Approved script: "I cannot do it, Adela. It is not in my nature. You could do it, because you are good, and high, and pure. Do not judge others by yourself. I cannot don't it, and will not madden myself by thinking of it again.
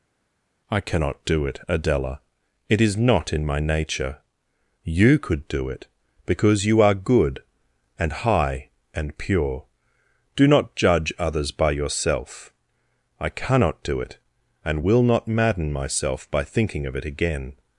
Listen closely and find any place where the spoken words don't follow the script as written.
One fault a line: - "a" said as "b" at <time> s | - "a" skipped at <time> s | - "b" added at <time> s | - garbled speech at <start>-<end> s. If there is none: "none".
- "don't" said as "do" at 13.8 s